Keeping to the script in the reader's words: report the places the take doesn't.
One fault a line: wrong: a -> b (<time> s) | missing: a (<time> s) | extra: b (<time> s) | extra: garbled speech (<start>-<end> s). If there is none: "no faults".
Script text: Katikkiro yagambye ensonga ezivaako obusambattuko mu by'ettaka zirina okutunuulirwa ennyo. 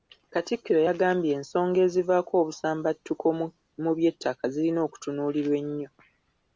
no faults